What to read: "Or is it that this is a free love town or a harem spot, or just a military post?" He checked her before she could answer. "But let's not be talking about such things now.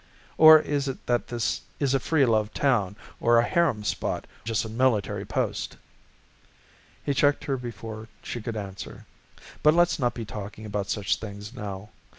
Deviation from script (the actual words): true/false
true